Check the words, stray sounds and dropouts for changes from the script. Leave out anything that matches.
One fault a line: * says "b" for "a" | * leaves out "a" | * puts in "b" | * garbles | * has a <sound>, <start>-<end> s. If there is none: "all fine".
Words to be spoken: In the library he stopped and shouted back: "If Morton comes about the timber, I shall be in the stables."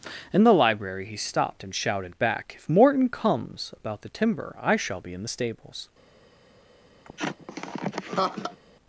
* has a laugh, 7.0-8.6 s